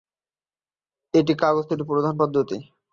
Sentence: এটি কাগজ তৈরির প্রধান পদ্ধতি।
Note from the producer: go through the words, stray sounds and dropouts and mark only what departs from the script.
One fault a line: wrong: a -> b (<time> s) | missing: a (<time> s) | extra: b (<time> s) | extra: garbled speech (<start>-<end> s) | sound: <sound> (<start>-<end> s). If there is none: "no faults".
no faults